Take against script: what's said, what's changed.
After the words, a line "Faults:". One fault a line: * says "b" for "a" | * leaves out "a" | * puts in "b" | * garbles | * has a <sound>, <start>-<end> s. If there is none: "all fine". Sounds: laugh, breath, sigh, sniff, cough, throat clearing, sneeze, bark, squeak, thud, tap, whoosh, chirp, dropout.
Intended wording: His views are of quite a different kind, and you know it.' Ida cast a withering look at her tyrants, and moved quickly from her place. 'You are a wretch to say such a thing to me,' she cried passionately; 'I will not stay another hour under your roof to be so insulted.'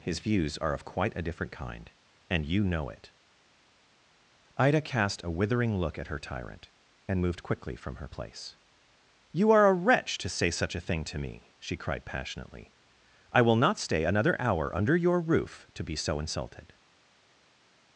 His views are of quite a different kind, and you know it.' Ida cast a withering look at her tyrant, and moved quickly from her place. 'You are a wretch to say such a thing to me,' she cried passionately; 'I will not stay another hour under your roof to be so insulted.'
Faults:
* says "tyrant" for "tyrants"